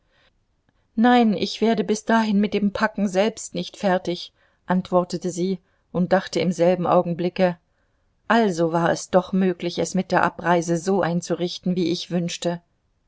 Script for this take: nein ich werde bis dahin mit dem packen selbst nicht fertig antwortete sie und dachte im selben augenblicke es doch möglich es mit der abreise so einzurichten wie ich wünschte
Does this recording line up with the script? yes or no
no